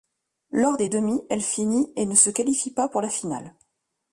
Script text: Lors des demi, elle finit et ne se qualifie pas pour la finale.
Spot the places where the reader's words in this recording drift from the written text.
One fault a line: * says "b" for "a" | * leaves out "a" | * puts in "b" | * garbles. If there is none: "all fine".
all fine